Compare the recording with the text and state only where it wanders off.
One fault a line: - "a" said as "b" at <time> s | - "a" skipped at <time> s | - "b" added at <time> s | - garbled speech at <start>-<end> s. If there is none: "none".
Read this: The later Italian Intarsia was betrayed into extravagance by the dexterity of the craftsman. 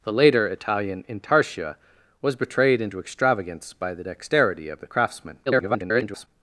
- garbled speech at 5.5-6.3 s